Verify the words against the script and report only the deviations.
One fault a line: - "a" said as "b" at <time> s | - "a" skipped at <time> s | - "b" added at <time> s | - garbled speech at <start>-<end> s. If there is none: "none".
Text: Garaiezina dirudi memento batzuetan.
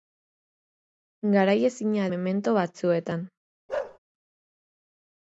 - "dirudi" skipped at 2.1 s